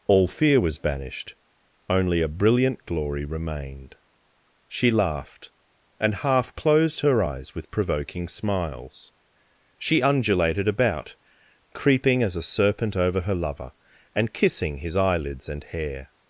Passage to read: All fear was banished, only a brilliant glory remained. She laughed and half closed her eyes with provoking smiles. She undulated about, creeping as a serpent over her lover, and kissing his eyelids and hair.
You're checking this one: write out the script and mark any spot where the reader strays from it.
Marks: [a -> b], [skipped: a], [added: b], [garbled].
All fear was banished, only a brilliant glory remained. She laughed and half closed her eyes with provoking smiles. She undulated about, creeping as a serpent over her lover, and kissing his eyelids and hair.